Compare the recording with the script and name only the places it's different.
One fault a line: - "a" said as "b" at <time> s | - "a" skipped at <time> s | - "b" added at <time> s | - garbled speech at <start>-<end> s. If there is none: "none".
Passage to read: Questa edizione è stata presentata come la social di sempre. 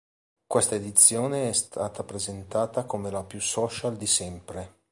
- "più" added at 3.2 s